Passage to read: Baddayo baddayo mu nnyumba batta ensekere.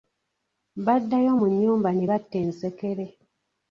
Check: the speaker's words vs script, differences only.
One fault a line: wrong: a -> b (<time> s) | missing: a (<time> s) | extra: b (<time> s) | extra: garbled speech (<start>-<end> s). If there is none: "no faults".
missing: baddayo (1.3 s)
extra: ne (1.9 s)